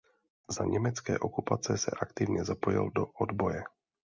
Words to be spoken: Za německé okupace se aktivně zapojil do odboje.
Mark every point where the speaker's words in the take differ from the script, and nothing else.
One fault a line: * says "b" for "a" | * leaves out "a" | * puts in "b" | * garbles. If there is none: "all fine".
all fine